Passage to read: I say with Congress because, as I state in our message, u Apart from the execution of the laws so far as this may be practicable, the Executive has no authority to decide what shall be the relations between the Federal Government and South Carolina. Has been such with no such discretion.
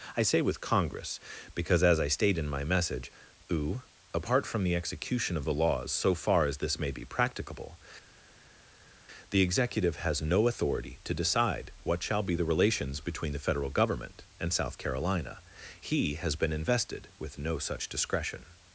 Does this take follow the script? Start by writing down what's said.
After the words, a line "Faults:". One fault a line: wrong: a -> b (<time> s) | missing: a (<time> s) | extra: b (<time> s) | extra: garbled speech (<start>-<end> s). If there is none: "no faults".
I say with Congress because, as I state in my message, u Apart from the execution of the laws so far as this may be practicable, the Executive has no authority to decide what shall be the relations between the Federal Government and South Carolina. He has been invested with no such discretion.
Faults:
wrong: our -> my (2.5 s)
extra: He (15.8 s)
wrong: such -> invested (16.5 s)